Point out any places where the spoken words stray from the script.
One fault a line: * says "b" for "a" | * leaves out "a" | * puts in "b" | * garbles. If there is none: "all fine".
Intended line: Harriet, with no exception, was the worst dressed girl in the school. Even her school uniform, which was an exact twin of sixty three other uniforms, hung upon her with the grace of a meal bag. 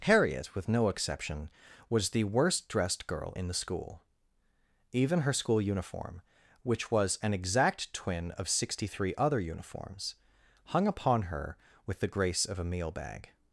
all fine